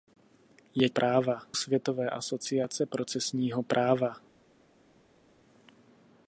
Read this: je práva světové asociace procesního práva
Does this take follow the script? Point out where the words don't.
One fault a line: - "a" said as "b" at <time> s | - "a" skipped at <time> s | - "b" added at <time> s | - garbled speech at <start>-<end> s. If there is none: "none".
none